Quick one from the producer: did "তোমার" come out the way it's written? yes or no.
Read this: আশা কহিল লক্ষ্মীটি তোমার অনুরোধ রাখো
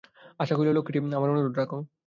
no